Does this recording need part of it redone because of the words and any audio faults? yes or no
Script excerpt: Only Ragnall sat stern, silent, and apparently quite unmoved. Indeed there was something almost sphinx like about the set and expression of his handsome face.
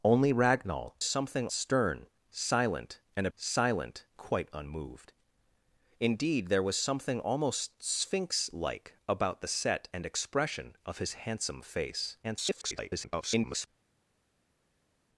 yes